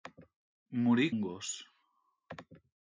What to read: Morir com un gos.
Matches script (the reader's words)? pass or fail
fail